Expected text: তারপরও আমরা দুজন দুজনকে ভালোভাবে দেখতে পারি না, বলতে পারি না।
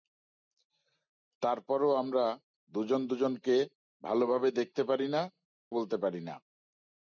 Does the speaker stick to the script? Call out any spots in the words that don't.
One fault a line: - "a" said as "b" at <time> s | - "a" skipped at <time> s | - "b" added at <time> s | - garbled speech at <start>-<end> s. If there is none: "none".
none